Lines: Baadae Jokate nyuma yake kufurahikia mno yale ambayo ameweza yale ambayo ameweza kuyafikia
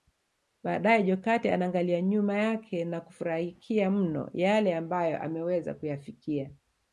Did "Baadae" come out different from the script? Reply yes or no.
no